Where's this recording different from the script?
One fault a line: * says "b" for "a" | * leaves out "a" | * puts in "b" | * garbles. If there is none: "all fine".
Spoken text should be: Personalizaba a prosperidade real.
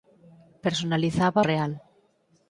* leaves out "a prosperidade"